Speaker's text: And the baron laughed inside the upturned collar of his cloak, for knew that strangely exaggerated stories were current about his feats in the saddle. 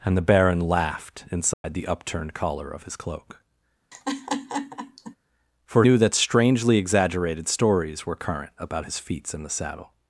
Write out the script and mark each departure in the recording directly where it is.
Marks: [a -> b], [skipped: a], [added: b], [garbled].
And the baron laughed inside the upturned collar of his cloak, for knew that strangely exaggerated stories were current about his feats in the saddle.